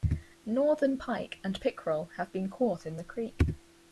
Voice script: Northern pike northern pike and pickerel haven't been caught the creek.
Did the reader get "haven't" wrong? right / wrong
wrong